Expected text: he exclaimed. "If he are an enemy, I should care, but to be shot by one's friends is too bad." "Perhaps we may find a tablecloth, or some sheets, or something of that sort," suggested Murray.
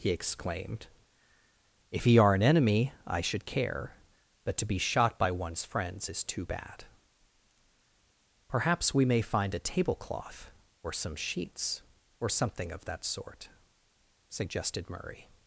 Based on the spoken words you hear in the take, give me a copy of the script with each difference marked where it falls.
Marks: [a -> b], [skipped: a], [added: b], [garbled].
he exclaimed. "If he are an enemy, I should care, but to be shot by one's friends is too bad." "Perhaps we may find a tablecloth, or some sheets, or something of that sort," suggested Murray.